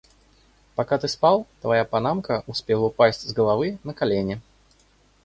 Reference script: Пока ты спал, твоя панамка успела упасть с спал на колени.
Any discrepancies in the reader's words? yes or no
yes